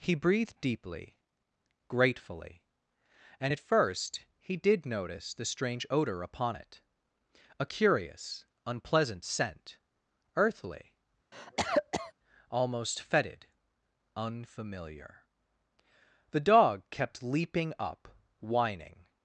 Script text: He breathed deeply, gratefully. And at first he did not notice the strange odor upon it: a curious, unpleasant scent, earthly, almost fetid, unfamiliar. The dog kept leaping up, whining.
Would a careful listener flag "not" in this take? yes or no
yes